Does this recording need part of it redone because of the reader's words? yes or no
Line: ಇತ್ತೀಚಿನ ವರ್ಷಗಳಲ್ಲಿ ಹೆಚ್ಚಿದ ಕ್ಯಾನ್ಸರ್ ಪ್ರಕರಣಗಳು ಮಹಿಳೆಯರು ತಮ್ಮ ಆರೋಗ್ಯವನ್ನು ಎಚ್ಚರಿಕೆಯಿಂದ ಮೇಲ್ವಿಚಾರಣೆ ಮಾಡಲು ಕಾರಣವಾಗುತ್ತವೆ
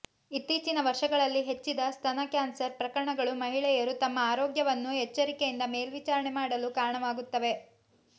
yes